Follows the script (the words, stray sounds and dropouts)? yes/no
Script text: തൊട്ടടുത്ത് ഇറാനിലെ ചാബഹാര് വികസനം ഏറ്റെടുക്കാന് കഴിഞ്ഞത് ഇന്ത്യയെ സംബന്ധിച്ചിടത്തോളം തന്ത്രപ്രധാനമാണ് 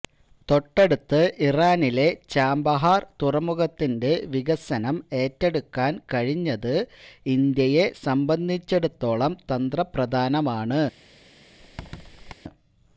no